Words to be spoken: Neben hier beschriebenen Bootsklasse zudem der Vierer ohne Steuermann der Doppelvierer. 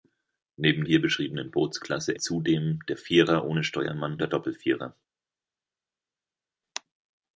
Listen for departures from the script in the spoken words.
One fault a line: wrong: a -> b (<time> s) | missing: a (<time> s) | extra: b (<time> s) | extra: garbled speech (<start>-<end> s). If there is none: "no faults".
no faults